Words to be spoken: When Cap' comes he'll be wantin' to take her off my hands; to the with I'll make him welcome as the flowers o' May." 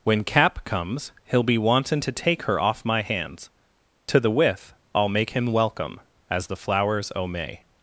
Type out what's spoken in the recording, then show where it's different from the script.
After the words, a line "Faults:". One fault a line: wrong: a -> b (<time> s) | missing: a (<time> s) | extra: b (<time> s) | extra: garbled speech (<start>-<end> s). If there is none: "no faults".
When Cap' comes he'll be wantin' to take her off my hands; to the with I'll make him welcome as the flowers o' May."
Faults:
no faults